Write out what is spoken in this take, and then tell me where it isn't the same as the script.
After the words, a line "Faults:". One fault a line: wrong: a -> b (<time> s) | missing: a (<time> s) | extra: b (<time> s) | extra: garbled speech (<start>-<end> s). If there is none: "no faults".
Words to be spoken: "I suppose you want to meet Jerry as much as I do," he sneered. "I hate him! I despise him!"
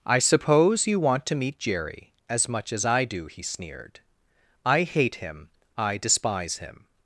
"I suppose you want to meet Jerry as much as I do," he sneered. "I hate him! I despise him!"
Faults:
no faults